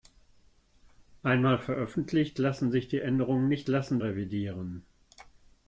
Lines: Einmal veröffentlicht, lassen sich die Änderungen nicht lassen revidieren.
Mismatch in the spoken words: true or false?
false